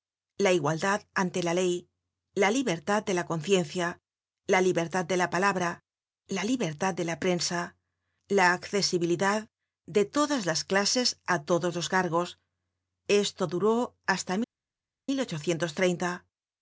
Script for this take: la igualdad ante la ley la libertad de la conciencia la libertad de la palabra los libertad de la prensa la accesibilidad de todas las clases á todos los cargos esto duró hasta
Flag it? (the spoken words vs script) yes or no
yes